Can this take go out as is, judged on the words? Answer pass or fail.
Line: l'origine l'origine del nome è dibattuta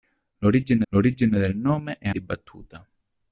pass